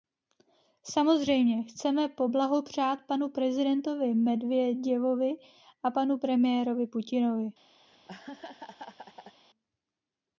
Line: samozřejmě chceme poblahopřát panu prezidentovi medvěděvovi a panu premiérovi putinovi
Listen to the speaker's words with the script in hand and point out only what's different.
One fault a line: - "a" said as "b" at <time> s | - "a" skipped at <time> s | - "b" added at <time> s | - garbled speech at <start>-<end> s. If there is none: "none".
none